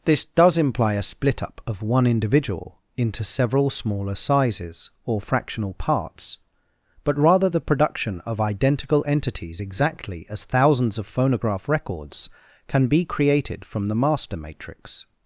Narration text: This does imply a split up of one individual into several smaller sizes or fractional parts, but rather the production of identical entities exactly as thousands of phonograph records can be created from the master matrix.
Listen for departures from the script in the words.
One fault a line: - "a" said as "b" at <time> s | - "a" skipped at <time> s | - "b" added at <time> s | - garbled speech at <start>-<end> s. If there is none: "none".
none